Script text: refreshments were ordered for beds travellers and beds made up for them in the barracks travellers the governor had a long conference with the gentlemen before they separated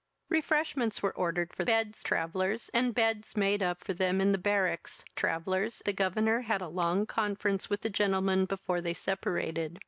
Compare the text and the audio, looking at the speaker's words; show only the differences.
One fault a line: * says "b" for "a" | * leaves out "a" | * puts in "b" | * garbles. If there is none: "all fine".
all fine